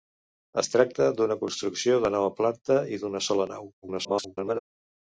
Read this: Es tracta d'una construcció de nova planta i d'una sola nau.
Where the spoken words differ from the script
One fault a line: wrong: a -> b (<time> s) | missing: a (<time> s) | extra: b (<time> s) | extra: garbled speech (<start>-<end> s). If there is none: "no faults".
extra: garbled speech (3.8-4.6 s)